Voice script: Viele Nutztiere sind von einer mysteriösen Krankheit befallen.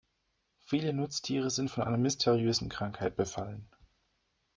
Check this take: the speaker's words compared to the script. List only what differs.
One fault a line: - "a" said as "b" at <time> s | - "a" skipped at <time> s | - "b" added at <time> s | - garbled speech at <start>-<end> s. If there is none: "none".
none